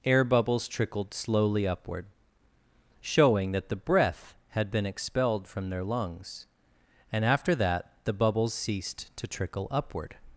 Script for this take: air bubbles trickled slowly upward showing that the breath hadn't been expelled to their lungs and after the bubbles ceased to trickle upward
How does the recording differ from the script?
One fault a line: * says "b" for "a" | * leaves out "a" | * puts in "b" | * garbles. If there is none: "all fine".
* says "had" for "hadn't"
* says "from" for "to"
* puts in "that"